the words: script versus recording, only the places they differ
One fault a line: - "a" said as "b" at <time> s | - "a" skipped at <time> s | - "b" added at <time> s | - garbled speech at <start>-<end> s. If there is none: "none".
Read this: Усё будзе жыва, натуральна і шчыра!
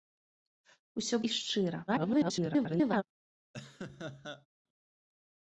- "будзе жыва натуральна" skipped at 1.2 s
- garbled speech at 1.9-3.0 s